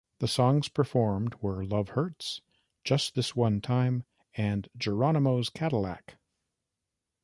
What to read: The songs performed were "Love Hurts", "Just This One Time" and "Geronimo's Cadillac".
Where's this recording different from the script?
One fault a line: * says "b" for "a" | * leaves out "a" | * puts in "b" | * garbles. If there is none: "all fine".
all fine